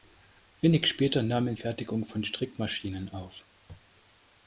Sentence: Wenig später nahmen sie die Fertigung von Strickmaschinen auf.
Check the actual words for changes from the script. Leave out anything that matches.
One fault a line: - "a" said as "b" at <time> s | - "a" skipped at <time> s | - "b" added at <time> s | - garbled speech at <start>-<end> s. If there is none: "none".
- "sie die" skipped at 1.5 s